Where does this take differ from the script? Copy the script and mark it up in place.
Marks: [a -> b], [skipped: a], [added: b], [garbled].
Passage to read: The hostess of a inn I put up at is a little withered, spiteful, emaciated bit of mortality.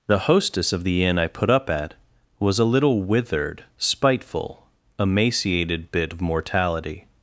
The hostess of [a -> the] inn I put up at [is -> was] a little withered, spiteful, emaciated bit of mortality.